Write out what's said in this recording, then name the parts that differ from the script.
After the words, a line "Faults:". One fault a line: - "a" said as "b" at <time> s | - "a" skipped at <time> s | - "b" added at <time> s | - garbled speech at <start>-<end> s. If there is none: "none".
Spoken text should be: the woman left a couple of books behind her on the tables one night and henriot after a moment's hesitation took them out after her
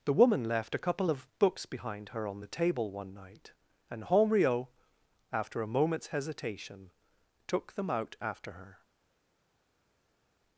the woman left a couple of books behind her on the table one night and henriot after a moment's hesitation took them out after her
Faults:
- "tables" said as "table" at 2.5 s